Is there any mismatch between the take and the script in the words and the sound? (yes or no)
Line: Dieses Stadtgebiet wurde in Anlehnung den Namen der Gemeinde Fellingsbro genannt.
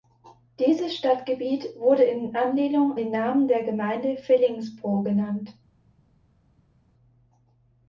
no